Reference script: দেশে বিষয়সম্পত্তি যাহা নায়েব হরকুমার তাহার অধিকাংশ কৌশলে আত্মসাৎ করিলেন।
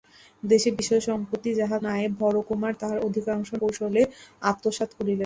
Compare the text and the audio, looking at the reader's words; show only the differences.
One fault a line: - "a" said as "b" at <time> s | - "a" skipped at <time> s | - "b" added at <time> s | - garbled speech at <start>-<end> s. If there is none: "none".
none